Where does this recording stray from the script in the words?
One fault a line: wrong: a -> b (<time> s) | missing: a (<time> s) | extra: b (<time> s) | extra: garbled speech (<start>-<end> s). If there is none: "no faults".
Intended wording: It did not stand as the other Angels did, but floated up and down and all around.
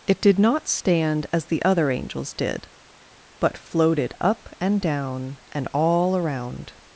no faults